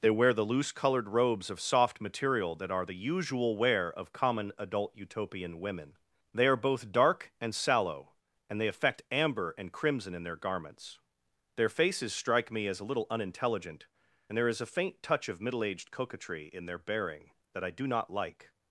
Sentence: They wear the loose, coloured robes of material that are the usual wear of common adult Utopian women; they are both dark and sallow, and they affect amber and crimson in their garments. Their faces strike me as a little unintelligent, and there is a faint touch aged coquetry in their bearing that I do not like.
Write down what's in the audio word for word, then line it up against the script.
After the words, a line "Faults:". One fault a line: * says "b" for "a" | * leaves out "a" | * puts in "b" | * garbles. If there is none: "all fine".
They wear the loose, coloured robes of soft material that are the usual wear of common adult Utopian women; they are both dark and sallow, and they affect amber and crimson in their garments. Their faces strike me as a little unintelligent, and there is a faint touch of middle aged coquetry in their bearing that I do not like.
Faults:
* puts in "soft"
* puts in "of middle"